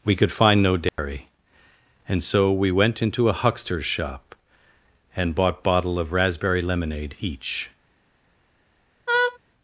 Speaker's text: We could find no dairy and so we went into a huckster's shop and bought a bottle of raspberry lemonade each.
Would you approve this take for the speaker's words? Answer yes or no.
no